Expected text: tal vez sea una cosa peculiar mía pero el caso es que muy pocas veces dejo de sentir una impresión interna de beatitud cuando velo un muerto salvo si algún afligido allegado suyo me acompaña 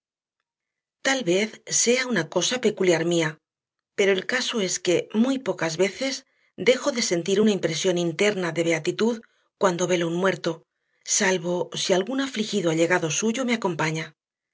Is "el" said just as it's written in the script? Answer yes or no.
yes